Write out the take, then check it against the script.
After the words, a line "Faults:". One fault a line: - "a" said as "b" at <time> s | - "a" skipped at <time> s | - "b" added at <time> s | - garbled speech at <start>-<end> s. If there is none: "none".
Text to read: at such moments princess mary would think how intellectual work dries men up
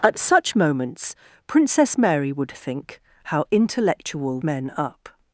at such moments princess mary would think how intellectual men up
Faults:
- "work dries" skipped at 4.4 s